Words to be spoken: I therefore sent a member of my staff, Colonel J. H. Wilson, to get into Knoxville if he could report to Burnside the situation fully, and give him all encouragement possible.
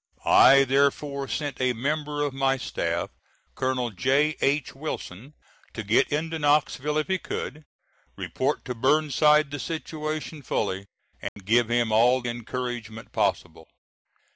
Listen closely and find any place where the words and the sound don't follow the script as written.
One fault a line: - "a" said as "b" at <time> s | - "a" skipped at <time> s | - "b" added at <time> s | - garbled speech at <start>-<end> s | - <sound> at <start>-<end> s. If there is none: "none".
- dropout at 11.3-11.4 s